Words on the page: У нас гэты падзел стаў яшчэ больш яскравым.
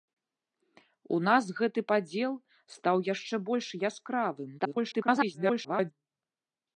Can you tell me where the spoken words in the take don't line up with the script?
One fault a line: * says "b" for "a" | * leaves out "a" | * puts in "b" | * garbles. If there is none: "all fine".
* garbles